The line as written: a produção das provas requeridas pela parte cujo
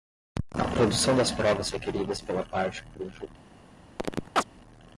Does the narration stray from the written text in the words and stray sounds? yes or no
yes